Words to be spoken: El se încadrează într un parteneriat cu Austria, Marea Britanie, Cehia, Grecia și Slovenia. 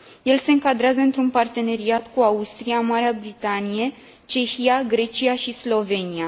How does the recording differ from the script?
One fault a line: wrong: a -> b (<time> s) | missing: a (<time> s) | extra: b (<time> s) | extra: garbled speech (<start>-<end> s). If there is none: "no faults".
no faults